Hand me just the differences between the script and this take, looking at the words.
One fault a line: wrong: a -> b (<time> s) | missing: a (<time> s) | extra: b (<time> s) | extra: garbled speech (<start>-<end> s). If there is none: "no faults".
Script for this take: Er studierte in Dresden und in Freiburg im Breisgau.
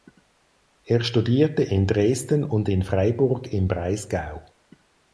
no faults